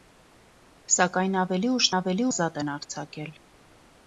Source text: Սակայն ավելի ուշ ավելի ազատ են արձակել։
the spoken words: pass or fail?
pass